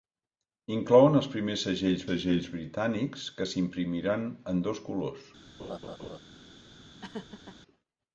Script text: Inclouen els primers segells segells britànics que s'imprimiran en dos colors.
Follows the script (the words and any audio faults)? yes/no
no